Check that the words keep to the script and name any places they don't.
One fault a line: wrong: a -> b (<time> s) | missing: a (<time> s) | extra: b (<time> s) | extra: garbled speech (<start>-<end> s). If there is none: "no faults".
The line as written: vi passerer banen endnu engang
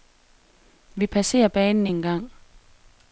missing: endnu (1.9 s)